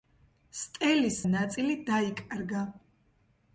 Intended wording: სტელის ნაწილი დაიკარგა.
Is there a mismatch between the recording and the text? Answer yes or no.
no